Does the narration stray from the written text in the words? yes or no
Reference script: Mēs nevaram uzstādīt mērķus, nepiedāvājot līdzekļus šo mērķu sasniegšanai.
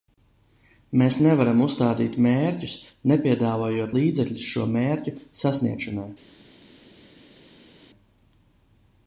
no